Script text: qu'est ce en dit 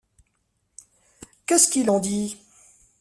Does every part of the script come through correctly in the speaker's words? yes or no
no